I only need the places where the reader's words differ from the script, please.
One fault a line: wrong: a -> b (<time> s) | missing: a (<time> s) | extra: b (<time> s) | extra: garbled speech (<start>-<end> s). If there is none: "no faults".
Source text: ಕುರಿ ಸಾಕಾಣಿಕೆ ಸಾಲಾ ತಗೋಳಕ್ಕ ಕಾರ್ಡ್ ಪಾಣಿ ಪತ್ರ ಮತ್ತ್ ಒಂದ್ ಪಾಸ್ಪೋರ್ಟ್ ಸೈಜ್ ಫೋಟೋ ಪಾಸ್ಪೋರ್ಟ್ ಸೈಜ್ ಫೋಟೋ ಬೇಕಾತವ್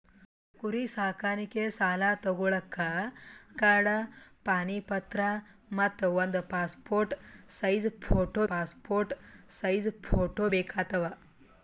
no faults